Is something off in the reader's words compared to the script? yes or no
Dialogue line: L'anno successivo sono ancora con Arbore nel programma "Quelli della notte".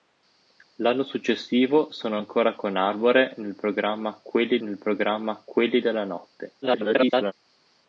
yes